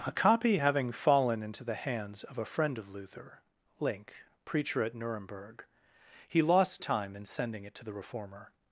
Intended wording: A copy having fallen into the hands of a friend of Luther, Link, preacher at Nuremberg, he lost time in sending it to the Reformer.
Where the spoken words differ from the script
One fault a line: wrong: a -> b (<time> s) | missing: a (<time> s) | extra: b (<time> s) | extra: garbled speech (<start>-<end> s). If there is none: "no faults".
no faults